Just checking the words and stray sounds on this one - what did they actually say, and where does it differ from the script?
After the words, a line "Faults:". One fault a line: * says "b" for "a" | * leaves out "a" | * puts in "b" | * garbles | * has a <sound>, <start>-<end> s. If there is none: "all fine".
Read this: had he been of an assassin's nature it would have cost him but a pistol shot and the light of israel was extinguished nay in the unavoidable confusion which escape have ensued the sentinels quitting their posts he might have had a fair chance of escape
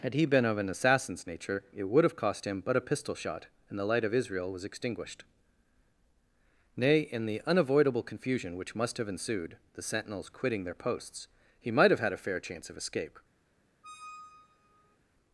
had he been of an assassin's nature it would have cost him but a pistol shot and the light of israel was extinguished nay in the unavoidable confusion which must have ensued the sentinels quitting their posts he might have had a fair chance of escape
Faults:
* says "must" for "escape"
* has a squeak, 13.8-15.0 s